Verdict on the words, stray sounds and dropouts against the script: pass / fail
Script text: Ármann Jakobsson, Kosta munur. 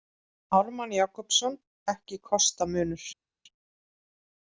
fail